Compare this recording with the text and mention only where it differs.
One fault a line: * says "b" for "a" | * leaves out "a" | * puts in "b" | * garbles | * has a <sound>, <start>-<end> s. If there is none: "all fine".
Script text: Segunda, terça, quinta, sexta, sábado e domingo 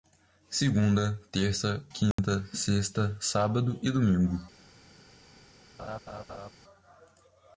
* has a dropout, 2.1-2.2 s
* has a laugh, 5.8-6.5 s